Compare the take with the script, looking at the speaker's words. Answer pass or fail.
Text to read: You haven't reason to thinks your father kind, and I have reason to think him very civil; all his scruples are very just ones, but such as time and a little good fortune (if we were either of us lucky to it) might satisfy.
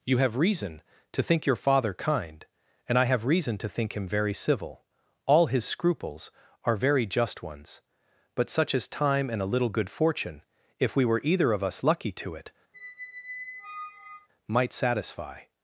fail